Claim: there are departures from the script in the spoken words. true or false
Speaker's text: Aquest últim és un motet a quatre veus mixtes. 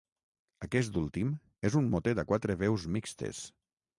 false